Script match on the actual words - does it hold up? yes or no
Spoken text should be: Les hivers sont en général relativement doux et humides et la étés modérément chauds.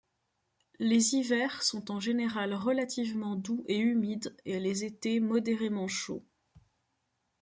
no